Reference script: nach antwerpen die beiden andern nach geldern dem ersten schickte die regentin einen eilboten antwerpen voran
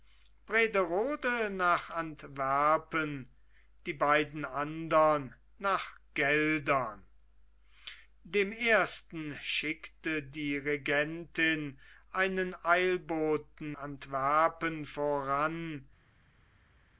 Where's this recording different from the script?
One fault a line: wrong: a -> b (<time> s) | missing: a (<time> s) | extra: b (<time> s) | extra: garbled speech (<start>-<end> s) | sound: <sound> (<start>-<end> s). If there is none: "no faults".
no faults